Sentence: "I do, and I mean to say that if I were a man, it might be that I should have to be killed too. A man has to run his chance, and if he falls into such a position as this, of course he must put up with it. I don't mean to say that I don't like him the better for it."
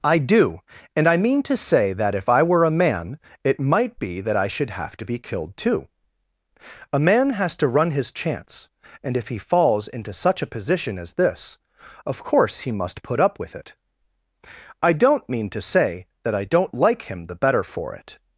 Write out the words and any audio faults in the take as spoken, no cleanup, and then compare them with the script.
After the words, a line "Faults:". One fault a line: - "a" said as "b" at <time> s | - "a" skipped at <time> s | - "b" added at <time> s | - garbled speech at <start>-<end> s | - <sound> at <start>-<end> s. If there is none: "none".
"I do, and I mean to say that if I were a man, it might be that I should have to be killed too. A man has to run his chance, and if he falls into such a position as this, of course he must put up with it. I don't mean to say that I don't like him the better for it."
Faults:
none